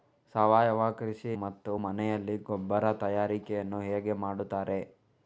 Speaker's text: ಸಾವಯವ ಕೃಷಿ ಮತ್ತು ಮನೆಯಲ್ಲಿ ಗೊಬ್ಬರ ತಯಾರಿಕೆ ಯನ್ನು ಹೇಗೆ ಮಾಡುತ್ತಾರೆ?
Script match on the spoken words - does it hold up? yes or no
yes